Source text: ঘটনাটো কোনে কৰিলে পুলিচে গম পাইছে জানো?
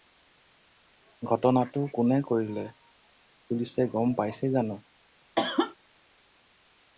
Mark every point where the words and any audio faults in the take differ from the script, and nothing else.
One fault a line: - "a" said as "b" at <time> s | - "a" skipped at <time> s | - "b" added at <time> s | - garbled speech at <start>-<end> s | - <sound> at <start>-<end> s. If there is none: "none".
- cough at 5.4-5.8 s